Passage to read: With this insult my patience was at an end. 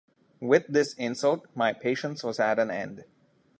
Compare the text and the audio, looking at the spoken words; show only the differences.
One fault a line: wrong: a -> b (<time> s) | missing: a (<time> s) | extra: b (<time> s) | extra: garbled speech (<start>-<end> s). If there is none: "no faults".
no faults